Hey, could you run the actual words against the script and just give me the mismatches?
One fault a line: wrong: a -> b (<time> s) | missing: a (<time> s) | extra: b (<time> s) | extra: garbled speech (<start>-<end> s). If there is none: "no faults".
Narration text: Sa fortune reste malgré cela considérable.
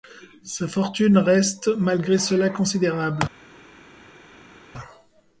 no faults